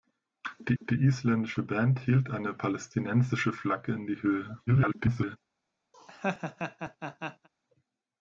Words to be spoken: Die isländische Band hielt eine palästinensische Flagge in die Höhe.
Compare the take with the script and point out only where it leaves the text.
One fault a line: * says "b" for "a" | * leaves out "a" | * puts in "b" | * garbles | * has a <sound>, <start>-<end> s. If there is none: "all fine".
* puts in "die"
* garbles
* has a laugh, 5.9-7.5 s